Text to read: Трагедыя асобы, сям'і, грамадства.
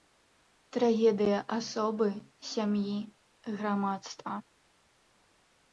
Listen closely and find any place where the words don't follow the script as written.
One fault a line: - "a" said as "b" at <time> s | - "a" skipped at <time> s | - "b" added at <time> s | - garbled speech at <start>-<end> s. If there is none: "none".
none